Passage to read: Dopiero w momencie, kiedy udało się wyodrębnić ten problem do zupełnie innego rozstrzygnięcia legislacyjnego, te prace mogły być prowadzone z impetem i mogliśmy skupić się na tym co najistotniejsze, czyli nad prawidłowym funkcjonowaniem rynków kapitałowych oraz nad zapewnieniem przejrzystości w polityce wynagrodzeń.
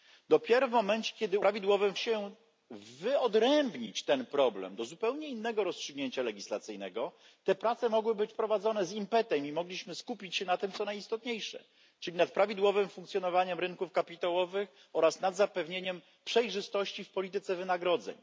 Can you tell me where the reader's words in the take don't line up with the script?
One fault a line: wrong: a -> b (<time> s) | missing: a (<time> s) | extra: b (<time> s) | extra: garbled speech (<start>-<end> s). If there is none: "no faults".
wrong: udało -> prawidłowym (1.4 s)